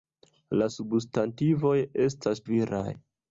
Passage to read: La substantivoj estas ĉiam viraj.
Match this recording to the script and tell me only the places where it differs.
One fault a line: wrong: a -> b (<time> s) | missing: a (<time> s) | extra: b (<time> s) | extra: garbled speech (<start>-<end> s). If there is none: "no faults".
missing: ĉiam (2.4 s)